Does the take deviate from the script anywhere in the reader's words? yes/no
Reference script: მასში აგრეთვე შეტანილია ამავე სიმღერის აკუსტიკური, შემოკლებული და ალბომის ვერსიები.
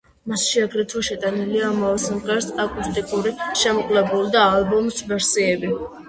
no